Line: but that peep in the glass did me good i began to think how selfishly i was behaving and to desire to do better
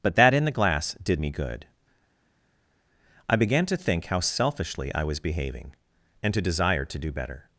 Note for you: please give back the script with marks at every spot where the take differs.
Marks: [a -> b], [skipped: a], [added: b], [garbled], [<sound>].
but that [skipped: peep] in the glass did me good i began to think how selfishly i was behaving and to desire to do better